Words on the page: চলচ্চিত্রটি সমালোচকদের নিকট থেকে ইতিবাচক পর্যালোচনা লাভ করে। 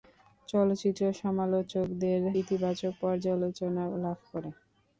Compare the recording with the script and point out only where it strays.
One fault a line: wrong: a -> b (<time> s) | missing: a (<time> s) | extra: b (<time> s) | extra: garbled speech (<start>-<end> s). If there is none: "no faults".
missing: নিকট থেকে (2.2 s)